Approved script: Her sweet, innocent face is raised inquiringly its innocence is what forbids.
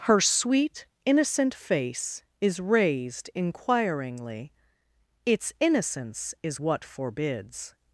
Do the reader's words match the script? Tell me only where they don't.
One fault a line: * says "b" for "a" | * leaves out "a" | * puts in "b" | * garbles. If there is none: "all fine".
all fine